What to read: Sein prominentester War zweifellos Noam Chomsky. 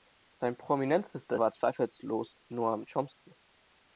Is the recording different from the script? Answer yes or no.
no